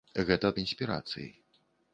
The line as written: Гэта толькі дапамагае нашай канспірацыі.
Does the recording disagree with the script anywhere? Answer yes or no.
yes